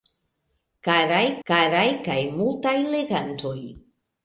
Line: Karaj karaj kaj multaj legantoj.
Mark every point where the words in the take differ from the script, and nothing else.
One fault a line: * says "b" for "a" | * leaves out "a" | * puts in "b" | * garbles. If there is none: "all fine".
all fine